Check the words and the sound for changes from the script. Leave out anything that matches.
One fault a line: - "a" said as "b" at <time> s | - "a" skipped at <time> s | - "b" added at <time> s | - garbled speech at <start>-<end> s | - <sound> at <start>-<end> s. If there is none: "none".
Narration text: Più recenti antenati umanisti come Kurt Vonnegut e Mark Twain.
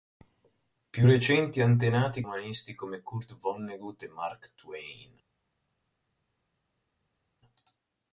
none